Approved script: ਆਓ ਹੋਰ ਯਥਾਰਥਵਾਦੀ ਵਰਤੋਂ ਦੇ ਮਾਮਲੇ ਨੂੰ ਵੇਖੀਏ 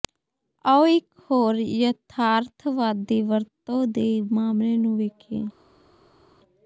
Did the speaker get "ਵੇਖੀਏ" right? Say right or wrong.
right